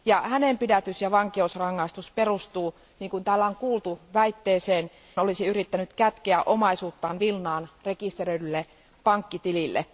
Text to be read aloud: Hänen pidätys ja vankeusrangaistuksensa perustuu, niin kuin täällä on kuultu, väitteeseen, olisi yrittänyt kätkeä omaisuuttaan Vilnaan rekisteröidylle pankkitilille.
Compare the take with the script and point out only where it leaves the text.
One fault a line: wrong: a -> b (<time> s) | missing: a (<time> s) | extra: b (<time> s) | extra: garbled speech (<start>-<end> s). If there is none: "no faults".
no faults